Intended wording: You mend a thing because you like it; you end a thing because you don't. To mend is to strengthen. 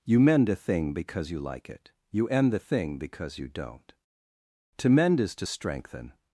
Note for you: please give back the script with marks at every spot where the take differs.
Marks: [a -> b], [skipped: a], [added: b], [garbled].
You mend a thing because you like it; you end [a -> the] thing because you don't. To mend is to strengthen.